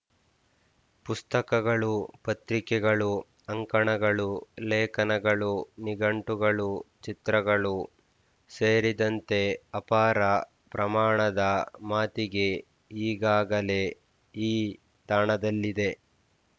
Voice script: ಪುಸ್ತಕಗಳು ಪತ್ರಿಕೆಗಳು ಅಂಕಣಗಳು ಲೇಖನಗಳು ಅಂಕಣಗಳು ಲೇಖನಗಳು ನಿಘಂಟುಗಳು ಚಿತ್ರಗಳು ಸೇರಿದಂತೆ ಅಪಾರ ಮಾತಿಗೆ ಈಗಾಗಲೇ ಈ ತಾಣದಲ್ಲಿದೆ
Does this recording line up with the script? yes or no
no